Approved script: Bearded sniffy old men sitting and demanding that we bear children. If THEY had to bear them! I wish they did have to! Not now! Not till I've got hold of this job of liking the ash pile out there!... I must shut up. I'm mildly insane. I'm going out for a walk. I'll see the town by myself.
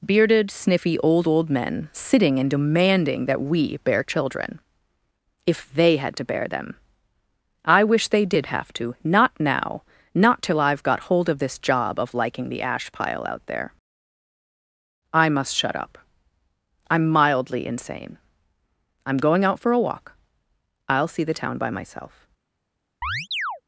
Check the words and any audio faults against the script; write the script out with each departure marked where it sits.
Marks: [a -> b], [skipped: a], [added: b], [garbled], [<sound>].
Bearded sniffy old [added: old] men sitting and demanding that we bear children. If THEY had to bear them! I wish they did have to! Not now! Not till I've got hold of this job of liking the ash pile out there!... I must shut up. I'm mildly insane. I'm going out for a walk. I'll see the town by myself. [chirp]